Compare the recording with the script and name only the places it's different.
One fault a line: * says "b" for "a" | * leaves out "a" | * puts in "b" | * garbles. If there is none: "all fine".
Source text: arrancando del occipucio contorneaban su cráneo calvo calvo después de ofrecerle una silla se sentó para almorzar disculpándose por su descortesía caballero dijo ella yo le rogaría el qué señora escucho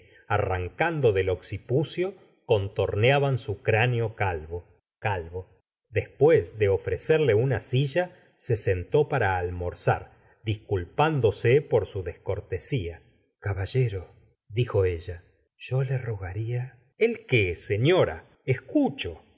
all fine